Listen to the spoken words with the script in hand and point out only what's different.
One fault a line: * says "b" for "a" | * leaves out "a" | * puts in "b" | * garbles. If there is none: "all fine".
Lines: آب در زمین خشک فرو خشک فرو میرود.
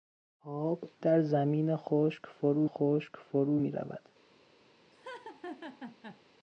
all fine